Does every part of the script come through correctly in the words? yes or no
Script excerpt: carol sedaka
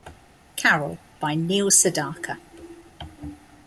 no